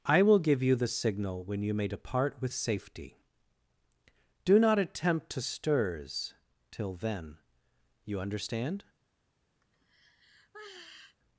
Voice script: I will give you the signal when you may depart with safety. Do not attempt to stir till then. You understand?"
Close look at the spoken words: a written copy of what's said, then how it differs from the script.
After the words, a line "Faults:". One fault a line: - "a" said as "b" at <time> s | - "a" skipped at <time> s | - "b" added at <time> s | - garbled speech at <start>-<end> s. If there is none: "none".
I will give you the signal when you may depart with safety. Do not attempt to stirs till then. You understand?"
Faults:
- "stir" said as "stirs" at 5.4 s